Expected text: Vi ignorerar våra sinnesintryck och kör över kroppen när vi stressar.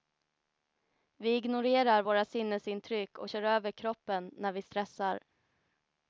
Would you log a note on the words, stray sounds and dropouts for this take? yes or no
no